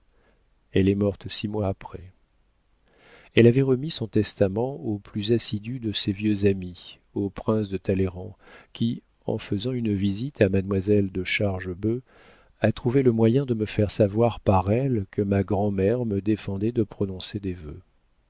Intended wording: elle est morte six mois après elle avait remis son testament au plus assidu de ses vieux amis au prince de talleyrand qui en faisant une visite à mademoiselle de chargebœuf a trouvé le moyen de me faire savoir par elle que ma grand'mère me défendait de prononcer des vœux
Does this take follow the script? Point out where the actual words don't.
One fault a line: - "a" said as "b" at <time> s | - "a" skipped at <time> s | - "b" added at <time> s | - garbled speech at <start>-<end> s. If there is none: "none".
none